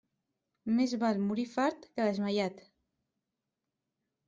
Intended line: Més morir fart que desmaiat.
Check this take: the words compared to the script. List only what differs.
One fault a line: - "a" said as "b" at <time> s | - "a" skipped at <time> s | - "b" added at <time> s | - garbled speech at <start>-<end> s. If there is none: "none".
- "val" added at 1.0 s